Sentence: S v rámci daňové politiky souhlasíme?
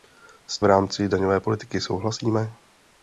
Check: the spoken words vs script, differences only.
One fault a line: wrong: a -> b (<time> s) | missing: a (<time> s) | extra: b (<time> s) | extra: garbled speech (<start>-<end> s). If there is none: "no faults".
no faults